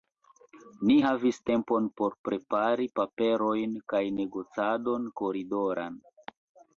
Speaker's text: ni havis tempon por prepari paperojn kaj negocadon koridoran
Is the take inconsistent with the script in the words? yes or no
no